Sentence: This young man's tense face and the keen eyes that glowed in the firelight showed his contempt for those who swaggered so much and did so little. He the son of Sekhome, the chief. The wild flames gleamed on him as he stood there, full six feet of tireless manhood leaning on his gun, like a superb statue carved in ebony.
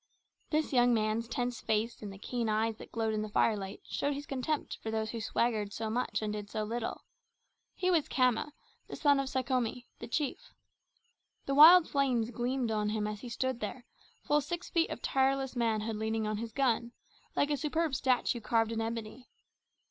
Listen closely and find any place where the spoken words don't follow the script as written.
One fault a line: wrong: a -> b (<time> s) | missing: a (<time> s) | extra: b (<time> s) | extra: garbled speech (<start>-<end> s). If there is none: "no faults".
extra: was Khama (7.9 s)